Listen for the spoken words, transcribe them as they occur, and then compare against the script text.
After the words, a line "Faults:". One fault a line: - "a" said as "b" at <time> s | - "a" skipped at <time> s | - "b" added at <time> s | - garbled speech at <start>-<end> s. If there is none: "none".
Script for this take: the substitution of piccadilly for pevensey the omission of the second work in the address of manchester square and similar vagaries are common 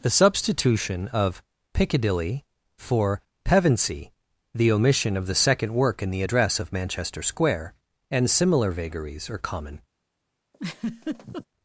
the substitution of piccadilly for pevensey the omission of the second work in the address of manchester square and similar vagaries are common
Faults:
none